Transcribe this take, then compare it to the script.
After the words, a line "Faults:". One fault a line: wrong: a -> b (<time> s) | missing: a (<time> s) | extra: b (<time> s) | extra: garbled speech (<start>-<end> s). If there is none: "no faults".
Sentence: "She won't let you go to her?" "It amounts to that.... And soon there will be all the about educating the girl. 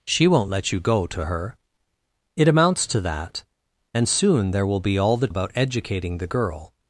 "She won't let you go to her?" "It amounts to that.... And soon there will be all the about educating the girl.
Faults:
no faults